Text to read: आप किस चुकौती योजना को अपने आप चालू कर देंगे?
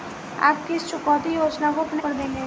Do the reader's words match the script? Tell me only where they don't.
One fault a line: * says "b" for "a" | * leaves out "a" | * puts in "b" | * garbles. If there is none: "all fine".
* leaves out "आप चालू"